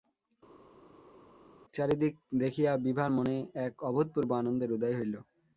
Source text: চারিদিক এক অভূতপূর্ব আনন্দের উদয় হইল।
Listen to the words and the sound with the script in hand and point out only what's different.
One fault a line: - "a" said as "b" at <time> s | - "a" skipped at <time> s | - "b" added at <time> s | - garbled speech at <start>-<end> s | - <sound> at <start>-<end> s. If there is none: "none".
- "দেখিয়া বিভার মনে" added at 2.4 s